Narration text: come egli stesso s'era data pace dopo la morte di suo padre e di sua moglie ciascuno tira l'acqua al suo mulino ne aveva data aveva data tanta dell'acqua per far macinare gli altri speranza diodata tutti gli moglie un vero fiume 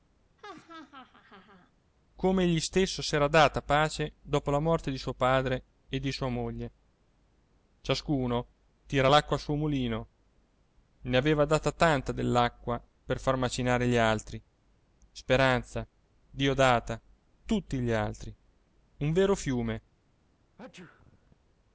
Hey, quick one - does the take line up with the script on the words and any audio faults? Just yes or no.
no